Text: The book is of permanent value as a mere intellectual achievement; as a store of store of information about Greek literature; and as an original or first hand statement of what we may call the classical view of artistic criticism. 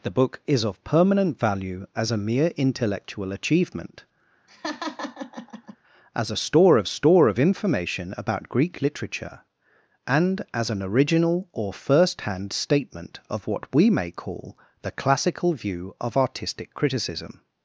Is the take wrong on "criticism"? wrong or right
right